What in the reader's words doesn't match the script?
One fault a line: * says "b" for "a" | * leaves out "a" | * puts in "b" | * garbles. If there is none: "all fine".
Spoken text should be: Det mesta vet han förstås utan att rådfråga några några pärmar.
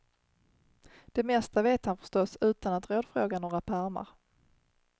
* leaves out "några"